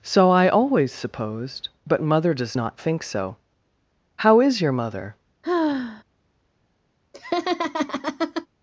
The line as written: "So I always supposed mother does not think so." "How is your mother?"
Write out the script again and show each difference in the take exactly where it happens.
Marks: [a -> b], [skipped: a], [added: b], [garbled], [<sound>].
"So I always supposed [added: but] mother does not think so." "How is your mother?" [sigh] [laugh]